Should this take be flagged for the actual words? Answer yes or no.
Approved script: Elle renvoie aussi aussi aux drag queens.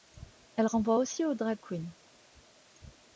yes